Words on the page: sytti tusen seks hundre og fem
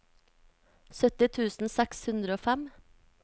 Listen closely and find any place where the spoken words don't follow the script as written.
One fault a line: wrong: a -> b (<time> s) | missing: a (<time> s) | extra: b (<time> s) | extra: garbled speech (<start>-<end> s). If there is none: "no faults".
no faults